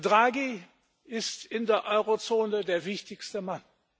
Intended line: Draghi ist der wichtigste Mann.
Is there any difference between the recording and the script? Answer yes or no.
yes